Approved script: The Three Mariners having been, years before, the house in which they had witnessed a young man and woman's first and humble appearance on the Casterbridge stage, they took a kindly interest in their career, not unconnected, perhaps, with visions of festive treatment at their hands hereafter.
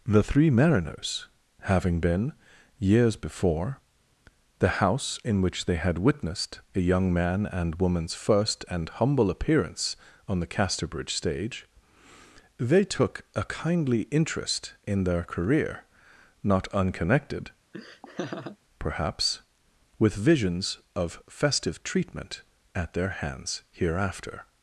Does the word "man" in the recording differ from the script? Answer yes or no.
no